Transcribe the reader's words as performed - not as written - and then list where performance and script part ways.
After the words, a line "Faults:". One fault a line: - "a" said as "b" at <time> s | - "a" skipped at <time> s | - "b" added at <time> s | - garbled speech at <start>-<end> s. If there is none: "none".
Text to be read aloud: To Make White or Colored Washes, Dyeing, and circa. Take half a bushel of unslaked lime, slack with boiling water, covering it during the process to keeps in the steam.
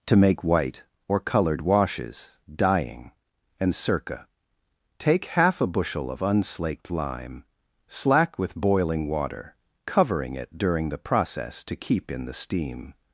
To Make White or Colored Washes, Dyeing, and circa. Take half a bushel of unslaked lime, slack with boiling water, covering it during the process to keep in the steam.
Faults:
- "keeps" said as "keep" at 11.8 s